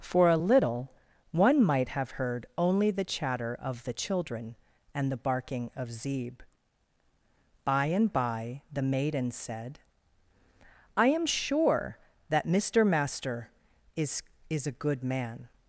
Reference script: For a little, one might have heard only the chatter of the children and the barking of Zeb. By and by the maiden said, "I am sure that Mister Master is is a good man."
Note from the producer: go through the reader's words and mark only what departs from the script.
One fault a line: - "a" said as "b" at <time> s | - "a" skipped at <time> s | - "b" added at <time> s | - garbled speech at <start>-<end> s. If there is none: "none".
none